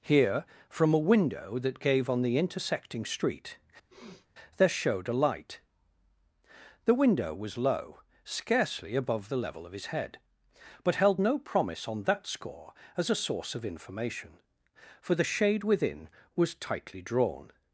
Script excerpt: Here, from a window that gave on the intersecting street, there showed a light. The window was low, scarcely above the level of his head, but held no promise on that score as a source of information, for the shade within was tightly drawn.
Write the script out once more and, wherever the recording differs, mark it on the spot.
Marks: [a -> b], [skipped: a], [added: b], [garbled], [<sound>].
Here, from a window that gave on the intersecting street, [sniff] there showed a light. The window was low, scarcely above the level of his head, but held no promise on that score as a source of information, for the shade within was tightly drawn.